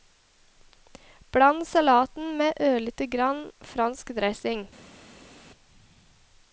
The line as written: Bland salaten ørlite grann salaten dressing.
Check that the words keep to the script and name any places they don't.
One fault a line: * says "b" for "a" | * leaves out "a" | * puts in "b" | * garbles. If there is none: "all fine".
* puts in "med"
* says "fransk" for "salaten"